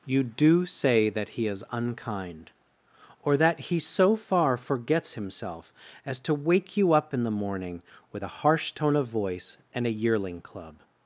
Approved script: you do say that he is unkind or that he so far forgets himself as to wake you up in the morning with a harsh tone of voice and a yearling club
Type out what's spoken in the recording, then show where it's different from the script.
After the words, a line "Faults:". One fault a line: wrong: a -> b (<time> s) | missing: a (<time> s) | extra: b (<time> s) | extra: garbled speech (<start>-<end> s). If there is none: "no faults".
you do say that he is unkind or that he so far forgets himself as to wake you up in the morning with a harsh tone of voice and a yearling club
Faults:
no faults